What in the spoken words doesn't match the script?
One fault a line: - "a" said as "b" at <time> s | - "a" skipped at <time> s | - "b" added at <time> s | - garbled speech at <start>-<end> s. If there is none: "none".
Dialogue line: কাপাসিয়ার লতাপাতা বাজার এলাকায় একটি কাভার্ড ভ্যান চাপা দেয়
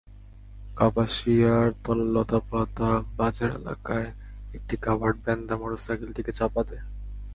- "তাঁর মোটরসাইকেলটিকে" added at 5.5 s